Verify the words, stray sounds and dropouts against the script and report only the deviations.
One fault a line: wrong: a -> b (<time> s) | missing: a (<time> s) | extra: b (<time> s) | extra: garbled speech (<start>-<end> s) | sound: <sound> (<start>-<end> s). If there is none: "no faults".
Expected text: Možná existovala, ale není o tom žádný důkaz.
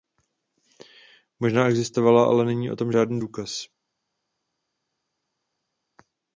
no faults